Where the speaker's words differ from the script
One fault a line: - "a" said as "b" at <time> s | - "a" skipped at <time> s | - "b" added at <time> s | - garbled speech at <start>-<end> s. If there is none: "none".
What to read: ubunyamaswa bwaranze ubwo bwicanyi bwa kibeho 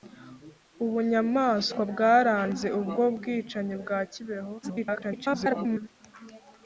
- garbled speech at 4.6-5.9 s